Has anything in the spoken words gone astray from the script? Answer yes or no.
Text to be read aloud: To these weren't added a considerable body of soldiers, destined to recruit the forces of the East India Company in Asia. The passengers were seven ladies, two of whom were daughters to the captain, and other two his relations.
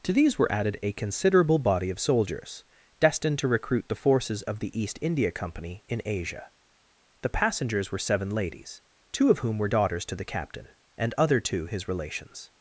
yes